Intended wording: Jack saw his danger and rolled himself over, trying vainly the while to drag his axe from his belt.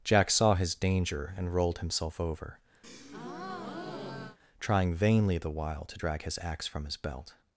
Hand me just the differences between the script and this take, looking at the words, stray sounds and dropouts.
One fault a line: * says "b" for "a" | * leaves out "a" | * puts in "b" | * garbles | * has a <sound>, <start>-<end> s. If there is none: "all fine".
* has a breath, 2.8-4.4 s